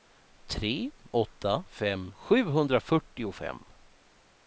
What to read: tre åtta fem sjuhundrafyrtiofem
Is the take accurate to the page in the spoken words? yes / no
yes